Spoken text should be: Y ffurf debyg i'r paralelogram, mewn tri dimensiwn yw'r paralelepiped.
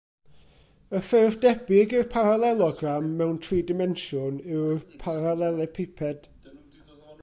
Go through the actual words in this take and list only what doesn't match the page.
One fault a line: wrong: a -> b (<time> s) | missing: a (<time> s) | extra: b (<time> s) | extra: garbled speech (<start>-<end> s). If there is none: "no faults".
no faults